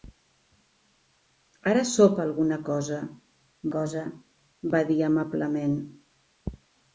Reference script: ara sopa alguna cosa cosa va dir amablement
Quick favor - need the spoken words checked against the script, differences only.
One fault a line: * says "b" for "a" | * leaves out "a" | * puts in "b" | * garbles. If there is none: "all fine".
all fine